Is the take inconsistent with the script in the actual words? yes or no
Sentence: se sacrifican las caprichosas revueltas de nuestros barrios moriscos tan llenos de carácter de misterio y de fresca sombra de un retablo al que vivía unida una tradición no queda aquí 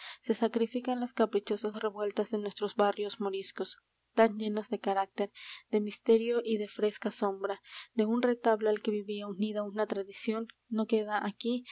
no